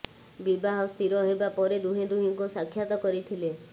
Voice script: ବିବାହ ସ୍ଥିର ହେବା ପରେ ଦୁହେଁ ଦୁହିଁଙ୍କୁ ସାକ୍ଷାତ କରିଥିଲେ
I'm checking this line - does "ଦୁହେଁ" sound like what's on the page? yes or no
yes